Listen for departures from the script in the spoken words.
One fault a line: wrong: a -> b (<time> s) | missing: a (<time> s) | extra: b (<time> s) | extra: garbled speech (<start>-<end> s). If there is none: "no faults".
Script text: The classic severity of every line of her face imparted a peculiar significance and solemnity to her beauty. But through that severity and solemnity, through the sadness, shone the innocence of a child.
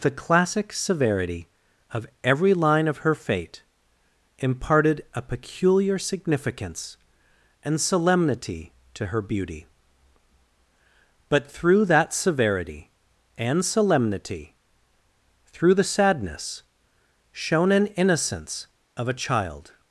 wrong: face -> fate (3.1 s)
wrong: the -> an (17.7 s)